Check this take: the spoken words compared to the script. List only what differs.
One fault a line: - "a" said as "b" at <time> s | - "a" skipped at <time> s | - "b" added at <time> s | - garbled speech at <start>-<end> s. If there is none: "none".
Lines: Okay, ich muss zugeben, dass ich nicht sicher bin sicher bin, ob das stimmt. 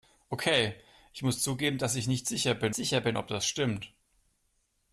none